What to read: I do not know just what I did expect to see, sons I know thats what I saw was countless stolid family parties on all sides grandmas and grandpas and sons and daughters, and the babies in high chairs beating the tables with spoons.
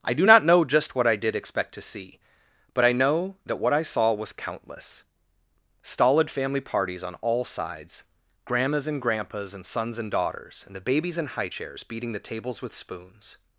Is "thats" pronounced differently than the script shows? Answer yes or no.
yes